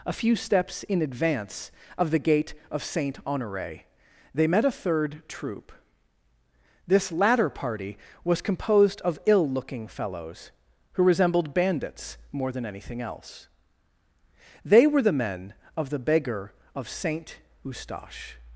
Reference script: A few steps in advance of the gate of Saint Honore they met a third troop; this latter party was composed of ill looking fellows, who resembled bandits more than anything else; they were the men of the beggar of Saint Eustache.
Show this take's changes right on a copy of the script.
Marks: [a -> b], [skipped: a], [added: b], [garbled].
A few steps in advance of the gate of Saint Honore they met a third troop; this latter party was composed of ill looking fellows, who resembled bandits more than anything else; they were the men of the beggar of Saint Eustache.